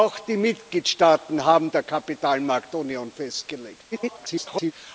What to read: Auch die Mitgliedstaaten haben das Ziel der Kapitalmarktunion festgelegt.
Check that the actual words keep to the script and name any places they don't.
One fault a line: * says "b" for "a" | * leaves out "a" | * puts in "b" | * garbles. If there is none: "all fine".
* leaves out "das Ziel"
* garbles